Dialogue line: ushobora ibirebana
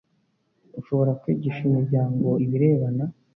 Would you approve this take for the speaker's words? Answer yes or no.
no